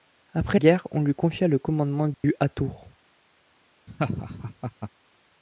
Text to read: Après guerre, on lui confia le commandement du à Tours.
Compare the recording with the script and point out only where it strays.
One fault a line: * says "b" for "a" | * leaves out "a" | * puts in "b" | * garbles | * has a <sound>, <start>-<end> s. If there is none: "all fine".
* has a dropout, 2.1-2.2 s
* has a laugh, 3.9-4.9 s